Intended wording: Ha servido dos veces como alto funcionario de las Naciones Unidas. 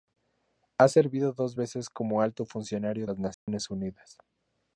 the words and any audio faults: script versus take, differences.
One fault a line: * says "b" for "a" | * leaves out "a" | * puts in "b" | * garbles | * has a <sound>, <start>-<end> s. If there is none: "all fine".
* leaves out "de"
* has a dropout, 3.3-3.5 s